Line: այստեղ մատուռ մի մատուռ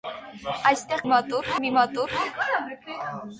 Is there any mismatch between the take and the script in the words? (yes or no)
no